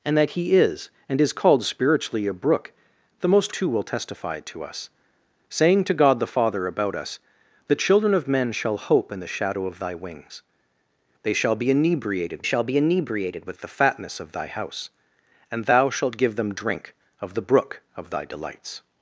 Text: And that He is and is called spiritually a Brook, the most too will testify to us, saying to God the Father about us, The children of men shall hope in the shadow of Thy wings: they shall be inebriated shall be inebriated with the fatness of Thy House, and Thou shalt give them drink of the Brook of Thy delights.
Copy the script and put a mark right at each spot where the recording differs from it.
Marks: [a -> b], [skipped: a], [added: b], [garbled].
And that He is and is called spiritually a Brook, the most too will testify to us, saying to God the Father about us, The children of men shall hope in the shadow of Thy wings: they shall be inebriated shall be inebriated with the fatness of Thy House, and Thou shalt give them drink of the Brook of Thy delights.